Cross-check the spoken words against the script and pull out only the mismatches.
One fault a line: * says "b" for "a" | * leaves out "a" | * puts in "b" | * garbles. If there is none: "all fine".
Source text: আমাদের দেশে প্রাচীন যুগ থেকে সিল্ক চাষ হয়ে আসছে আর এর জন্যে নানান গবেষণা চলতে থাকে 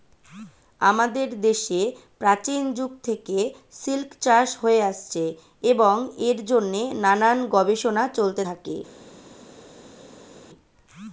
* says "এবং" for "আর"